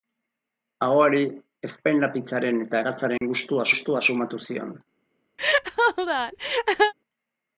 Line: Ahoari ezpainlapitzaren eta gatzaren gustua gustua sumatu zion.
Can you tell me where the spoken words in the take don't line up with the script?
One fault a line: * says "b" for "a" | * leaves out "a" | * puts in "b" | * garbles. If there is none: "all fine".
all fine